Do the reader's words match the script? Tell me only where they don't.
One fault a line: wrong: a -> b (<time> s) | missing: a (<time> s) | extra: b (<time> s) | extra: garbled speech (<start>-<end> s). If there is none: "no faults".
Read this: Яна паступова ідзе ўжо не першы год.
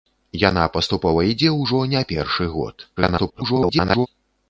extra: garbled speech (3.0-4.1 s)